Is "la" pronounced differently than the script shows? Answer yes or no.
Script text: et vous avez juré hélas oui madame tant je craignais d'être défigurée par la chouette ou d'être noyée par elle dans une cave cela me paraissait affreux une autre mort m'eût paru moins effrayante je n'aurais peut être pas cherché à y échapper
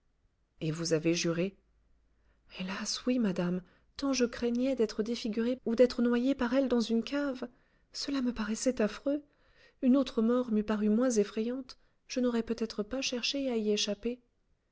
yes